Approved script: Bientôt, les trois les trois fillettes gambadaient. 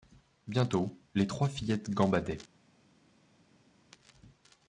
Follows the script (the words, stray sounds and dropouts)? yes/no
no